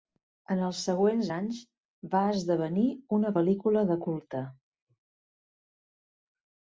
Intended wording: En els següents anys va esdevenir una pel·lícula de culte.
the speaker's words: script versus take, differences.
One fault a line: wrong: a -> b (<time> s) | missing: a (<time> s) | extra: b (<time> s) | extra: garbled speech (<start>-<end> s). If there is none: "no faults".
no faults